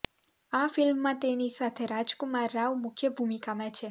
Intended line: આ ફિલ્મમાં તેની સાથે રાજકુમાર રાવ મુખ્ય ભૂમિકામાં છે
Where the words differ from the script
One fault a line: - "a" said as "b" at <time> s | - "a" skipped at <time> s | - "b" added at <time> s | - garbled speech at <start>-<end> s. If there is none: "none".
none